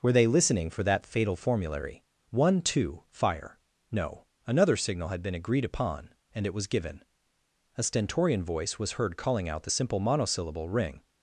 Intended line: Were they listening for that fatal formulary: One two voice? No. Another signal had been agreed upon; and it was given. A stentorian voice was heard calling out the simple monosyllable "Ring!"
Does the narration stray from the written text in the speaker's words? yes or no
yes